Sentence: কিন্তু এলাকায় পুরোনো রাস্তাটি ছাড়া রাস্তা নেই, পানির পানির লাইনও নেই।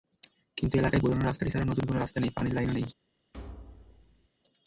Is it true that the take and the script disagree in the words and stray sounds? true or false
true